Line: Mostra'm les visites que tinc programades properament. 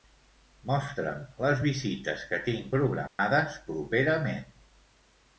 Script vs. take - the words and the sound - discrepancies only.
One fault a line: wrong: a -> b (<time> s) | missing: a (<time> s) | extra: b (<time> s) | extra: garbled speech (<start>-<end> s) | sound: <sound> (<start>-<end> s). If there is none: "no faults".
sound: dropout (3.1-3.2 s)